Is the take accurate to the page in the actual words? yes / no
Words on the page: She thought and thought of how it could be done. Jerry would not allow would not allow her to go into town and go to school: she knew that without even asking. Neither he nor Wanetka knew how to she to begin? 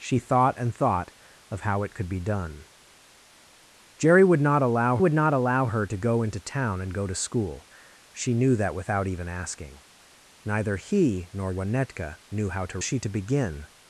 yes